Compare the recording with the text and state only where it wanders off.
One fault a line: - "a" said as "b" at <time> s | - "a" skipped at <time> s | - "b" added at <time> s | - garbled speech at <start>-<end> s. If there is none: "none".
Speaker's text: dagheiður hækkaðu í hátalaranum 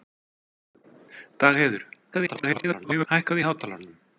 - garbled speech at 2.1-3.1 s